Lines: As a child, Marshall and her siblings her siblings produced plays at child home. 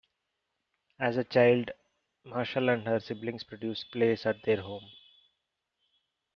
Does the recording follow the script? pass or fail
fail